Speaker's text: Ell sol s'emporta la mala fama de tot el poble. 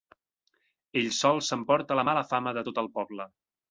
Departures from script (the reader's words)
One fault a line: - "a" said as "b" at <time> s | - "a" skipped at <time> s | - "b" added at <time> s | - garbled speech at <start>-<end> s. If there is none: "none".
none